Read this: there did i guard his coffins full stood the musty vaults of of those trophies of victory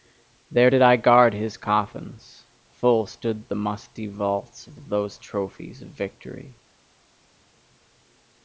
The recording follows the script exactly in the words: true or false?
true